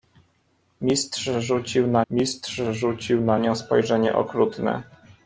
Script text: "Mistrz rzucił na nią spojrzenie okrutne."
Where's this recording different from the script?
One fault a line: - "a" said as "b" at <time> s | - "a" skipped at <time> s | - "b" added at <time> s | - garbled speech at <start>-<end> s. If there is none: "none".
- "mistrz rzucił na" added at 2.1 s